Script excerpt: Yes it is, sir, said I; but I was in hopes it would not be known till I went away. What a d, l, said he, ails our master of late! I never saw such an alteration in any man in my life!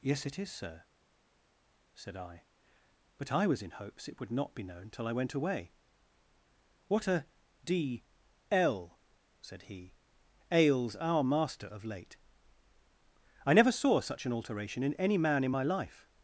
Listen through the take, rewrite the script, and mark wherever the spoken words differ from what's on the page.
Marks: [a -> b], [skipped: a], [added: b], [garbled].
Yes it is, sir, said I; but I was in hopes it would not be known till I went away. What a d, l, said he, ails our master of late! I never saw such an alteration in any man in my life!